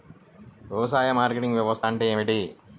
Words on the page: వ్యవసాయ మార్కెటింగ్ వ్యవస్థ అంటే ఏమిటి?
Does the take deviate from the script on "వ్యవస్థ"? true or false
false